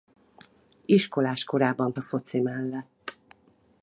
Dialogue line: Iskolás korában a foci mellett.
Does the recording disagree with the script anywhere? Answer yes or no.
no